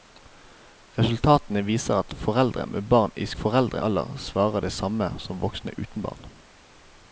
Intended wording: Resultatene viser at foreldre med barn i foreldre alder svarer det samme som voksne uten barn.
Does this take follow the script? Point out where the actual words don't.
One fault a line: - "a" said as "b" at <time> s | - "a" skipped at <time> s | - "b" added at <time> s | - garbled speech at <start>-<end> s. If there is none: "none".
none